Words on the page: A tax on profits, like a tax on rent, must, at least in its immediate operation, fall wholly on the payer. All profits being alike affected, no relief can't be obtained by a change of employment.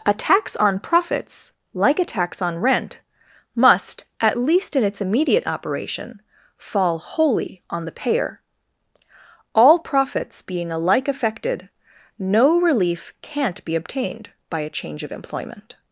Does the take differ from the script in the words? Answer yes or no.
no